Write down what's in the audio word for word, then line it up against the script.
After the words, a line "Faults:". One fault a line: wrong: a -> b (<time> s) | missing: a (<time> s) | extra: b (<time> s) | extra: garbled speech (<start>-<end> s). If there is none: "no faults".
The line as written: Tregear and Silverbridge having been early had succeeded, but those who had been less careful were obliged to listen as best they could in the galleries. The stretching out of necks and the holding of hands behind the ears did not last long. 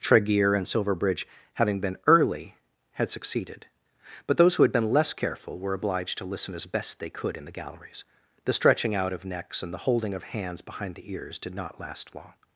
Tregear and Silverbridge having been early had succeeded, but those who had been less careful were obliged to listen as best they could in the galleries. The stretching out of necks and the holding of hands behind the ears did not last long.
Faults:
no faults